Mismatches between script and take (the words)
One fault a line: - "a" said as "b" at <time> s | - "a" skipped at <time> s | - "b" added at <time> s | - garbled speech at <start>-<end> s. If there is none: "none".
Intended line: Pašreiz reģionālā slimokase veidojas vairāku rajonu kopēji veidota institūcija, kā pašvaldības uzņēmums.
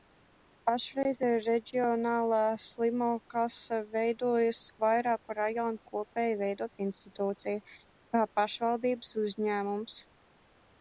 none